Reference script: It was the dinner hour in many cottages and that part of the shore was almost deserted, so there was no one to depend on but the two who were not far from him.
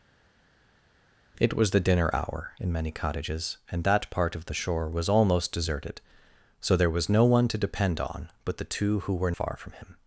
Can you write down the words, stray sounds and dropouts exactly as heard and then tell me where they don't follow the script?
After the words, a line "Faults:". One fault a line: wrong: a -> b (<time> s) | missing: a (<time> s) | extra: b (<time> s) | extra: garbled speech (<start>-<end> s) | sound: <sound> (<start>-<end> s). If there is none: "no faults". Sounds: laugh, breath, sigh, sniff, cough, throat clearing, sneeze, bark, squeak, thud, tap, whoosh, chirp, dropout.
It was the dinner hour in many cottages and that part of the shore was almost deserted, so there was no one to depend on but the two who were far from him.
Faults:
missing: not (9.3 s)